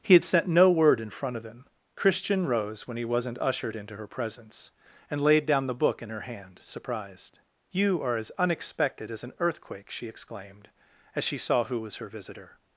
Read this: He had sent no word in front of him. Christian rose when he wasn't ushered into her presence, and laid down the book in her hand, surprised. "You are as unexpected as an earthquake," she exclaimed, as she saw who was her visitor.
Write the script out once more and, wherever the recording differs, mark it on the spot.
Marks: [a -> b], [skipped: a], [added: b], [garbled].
He had sent no word in front of him. Christian rose when he wasn't ushered into her presence, and laid down the book in her hand, surprised. "You are as unexpected as an earthquake," she exclaimed, as she saw who was her visitor.